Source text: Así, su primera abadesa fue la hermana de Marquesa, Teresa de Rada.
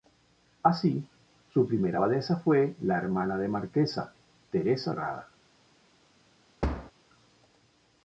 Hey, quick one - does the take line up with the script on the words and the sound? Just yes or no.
no